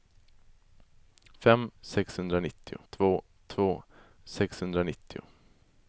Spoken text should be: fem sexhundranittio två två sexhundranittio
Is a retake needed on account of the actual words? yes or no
no